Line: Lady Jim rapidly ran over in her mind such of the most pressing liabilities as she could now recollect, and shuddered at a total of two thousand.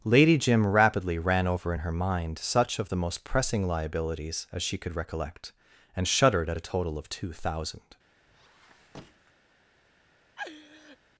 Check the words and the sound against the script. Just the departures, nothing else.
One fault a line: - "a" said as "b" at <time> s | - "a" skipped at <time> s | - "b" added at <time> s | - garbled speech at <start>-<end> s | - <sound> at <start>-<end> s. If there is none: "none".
- "now" skipped at 4.9 s
- squeak at 8.3-9.3 s
- laugh at 10.4-11.0 s